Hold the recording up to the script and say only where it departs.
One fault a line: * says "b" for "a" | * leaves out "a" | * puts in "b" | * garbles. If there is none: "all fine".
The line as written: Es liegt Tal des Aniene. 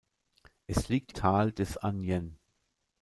all fine